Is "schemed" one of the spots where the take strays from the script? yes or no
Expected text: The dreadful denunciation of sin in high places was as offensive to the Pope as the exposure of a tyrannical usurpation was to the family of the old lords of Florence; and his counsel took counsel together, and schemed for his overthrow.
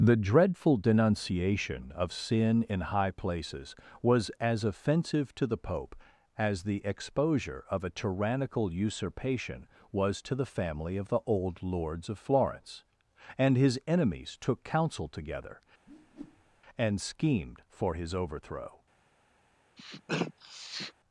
no